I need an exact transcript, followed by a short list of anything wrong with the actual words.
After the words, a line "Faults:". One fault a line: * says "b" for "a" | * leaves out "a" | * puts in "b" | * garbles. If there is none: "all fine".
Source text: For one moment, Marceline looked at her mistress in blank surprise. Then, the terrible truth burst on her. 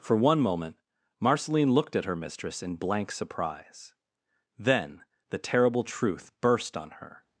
For one moment, Marceline looked at her mistress in blank surprise. Then, the terrible truth burst on her.
Faults:
all fine